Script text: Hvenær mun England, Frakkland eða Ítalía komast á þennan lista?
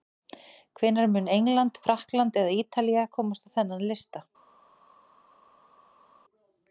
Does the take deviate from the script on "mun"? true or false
false